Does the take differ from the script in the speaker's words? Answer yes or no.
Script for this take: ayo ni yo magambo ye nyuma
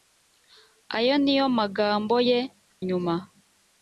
no